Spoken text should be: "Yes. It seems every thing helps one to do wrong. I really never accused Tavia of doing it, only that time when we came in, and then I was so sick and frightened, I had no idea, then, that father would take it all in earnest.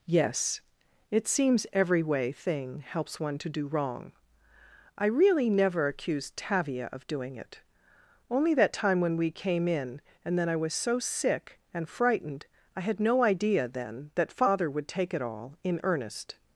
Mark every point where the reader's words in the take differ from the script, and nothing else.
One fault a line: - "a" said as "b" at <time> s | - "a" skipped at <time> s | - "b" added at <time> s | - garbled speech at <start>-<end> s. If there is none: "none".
- "way" added at 2.0 s